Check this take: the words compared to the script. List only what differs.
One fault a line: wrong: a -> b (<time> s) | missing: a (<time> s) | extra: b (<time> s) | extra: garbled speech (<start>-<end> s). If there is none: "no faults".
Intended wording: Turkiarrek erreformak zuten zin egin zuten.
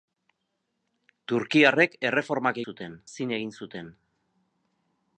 no faults